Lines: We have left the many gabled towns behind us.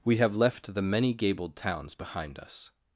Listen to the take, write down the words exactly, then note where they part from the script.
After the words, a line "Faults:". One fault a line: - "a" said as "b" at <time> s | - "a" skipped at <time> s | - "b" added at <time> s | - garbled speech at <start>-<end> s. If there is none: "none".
We have left the many gabled towns behind us.
Faults:
none